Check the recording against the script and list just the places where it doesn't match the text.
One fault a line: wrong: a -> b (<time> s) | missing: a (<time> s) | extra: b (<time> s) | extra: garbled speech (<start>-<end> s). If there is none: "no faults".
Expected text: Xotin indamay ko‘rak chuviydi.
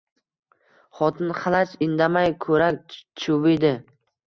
extra: xalaj (1.4 s)